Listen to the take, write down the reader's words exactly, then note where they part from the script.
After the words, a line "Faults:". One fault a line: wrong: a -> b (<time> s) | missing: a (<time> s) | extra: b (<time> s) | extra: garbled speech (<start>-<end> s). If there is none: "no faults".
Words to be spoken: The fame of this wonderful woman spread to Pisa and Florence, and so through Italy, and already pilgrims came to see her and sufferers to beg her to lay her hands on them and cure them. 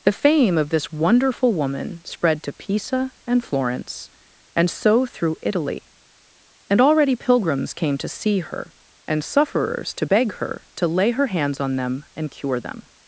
The fame of this wonderful woman spread to Pisa and Florence, and so through Italy, and already pilgrims came to see her and sufferers to beg her to lay her hands on them and cure them.
Faults:
no faults